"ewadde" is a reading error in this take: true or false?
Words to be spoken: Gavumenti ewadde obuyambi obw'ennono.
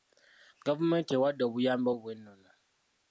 false